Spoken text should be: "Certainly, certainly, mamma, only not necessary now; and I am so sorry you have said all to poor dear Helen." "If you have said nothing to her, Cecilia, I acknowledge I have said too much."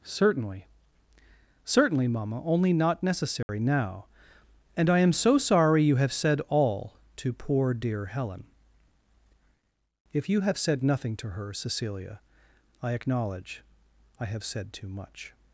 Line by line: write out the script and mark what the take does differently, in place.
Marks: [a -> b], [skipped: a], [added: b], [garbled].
"Certainly, certainly, mamma, only not necessary now; and I am so sorry you have said all to poor dear Helen." "If you have said nothing to her, Cecilia, I acknowledge I have said too much."